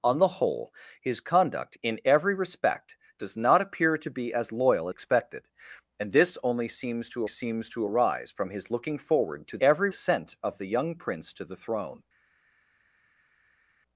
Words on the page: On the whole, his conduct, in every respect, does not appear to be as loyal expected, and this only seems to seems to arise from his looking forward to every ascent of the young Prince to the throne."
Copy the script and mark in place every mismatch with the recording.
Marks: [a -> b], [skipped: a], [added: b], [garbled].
On the whole, his conduct, in every respect, does not appear to be as loyal expected, and this only seems to seems to arise from his looking forward to every ascent of the young Prince to the throne."